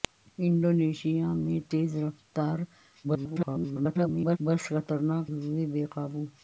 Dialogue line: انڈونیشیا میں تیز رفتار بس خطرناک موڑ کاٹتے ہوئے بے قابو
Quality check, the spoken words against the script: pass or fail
fail